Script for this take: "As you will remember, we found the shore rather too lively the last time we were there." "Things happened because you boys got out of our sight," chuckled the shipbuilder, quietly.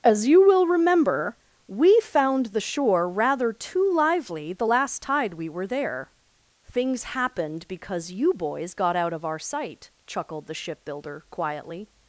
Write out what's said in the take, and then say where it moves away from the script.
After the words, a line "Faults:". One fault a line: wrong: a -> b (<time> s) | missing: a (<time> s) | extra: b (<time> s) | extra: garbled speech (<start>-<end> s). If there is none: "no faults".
"As you will remember, we found the shore rather too lively the last tide we were there." "Things happened because you boys got out of our sight," chuckled the shipbuilder, quietly.
Faults:
wrong: time -> tide (5.0 s)